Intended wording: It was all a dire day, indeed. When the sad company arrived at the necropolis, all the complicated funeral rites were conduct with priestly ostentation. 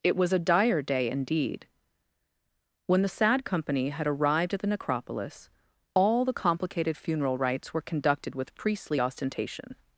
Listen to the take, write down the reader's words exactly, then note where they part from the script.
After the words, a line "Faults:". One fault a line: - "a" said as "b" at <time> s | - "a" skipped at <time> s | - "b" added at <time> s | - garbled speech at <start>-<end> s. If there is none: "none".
It was a dire day, indeed. When the sad company had arrived at the necropolis, all the complicated funeral rites were conducted with priestly ostentation.
Faults:
- "all" skipped at 0.3 s
- "had" added at 3.9 s
- "conduct" said as "conducted" at 7.8 s